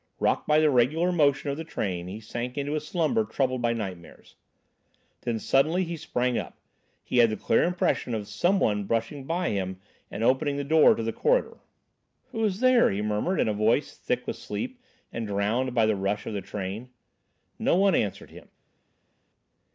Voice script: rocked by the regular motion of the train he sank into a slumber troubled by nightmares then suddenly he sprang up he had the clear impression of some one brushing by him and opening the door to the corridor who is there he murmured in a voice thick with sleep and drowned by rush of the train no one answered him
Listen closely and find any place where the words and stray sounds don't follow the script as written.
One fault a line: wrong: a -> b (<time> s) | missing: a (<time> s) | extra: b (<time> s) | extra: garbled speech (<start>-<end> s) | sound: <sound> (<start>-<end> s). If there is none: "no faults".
extra: the (15.9 s)